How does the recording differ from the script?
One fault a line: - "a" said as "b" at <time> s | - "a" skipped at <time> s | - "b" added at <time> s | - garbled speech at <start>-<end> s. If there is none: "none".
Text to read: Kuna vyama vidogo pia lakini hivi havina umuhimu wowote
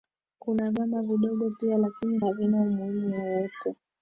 - "hivi" skipped at 2.2 s